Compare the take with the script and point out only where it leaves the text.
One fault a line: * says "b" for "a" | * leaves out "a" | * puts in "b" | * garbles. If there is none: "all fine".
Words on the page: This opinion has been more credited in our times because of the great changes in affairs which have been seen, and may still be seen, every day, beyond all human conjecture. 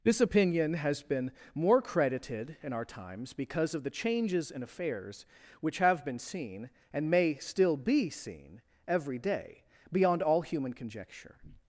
* leaves out "great"